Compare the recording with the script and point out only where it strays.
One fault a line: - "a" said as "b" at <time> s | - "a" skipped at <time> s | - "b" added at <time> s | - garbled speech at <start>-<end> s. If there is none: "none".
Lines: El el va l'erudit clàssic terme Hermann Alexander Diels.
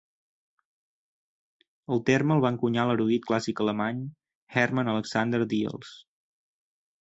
- "terme" added at 2.1 s
- "encunyar" added at 2.5 s
- "terme" said as "alemany" at 3.7 s